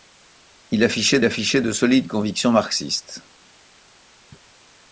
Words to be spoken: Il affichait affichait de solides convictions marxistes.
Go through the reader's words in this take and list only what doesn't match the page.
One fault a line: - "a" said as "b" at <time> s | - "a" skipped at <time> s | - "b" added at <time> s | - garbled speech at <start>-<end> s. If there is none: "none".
none